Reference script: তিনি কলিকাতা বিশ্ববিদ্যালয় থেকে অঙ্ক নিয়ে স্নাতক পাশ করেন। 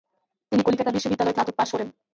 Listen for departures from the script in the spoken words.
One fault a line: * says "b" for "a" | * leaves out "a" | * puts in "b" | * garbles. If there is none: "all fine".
* leaves out "থেকে অঙ্ক নিয়ে"